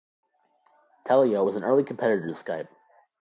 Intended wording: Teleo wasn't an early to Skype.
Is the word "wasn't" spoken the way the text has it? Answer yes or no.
no